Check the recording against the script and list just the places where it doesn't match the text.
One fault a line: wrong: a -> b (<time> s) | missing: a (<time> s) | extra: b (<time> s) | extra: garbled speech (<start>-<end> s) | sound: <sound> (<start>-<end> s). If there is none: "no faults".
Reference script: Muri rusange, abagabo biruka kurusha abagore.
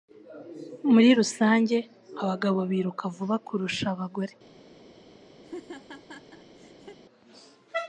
extra: vuba (3.2 s)
sound: laugh (5.4-7.0 s)